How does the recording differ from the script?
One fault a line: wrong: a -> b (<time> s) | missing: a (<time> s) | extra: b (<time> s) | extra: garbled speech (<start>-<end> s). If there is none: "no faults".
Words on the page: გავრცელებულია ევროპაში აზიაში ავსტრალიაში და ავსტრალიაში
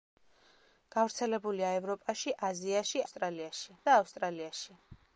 no faults